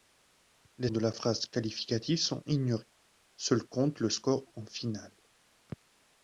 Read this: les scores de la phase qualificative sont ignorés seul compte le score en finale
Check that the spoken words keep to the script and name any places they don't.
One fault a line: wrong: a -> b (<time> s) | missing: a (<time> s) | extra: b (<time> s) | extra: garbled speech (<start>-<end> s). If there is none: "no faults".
missing: scores (0.9 s)